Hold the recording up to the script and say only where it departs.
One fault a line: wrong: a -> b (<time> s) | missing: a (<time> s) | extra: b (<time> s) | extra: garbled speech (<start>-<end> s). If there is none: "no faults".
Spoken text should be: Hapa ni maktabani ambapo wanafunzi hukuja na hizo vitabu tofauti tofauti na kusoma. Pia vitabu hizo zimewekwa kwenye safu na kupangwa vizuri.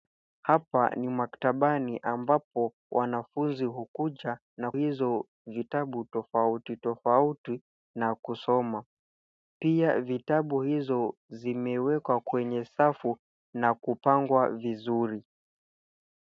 no faults